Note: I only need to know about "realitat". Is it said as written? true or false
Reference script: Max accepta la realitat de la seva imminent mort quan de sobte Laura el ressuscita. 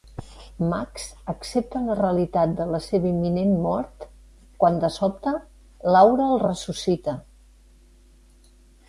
true